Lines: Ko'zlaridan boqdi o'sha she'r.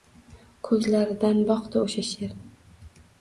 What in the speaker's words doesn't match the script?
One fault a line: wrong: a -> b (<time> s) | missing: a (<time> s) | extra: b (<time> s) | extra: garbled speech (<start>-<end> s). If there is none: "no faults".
no faults